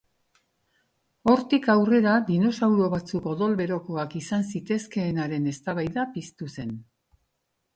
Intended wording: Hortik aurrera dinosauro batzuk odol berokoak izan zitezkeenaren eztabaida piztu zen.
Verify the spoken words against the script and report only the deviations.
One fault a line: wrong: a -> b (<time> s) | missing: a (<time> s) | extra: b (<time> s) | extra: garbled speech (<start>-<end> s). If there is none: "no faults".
no faults